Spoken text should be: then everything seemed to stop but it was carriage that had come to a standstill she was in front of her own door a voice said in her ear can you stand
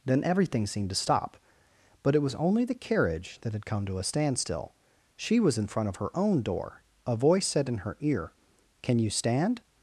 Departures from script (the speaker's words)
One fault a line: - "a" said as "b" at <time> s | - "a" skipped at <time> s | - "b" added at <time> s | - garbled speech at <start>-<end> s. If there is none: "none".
- "only the" added at 2.4 s